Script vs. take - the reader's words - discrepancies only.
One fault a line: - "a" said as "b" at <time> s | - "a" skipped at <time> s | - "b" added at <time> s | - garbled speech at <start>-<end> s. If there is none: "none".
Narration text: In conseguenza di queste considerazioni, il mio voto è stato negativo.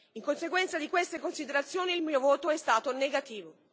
none